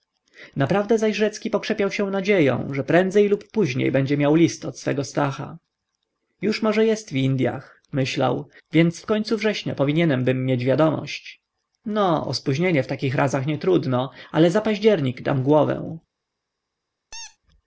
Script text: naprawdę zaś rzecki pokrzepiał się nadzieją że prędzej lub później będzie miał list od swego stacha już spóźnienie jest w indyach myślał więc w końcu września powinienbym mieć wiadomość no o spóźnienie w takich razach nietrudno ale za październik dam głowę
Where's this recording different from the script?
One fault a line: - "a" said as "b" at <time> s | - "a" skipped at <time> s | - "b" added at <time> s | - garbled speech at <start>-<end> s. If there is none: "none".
- "spóźnienie" said as "może" at 6.6 s